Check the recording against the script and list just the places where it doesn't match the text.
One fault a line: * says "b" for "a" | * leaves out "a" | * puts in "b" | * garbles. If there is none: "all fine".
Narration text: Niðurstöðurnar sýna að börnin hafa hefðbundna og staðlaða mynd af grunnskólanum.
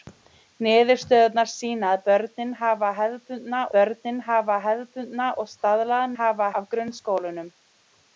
* puts in "börnin hafa hefðbundna"
* says "hafa" for "mynd"